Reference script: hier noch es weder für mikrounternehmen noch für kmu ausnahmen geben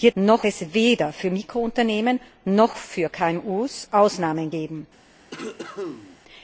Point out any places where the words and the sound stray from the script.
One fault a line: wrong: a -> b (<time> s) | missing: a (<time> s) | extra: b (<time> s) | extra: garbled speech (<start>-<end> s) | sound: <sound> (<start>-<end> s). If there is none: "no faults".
sound: cough (5.3-6.2 s)